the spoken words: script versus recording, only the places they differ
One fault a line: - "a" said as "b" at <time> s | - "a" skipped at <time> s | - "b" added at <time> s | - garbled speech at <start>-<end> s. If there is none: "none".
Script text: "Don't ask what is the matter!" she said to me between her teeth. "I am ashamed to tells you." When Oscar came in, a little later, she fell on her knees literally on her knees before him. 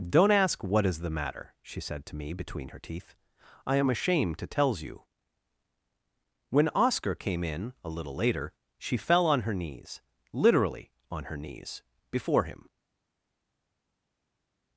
none